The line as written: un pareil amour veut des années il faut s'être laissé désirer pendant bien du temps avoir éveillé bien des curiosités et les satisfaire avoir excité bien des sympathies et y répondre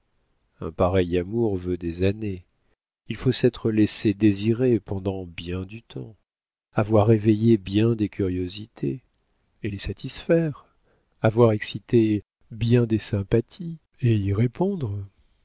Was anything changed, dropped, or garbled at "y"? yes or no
no